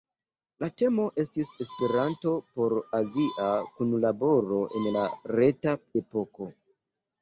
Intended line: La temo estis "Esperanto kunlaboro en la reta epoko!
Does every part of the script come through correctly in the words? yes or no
no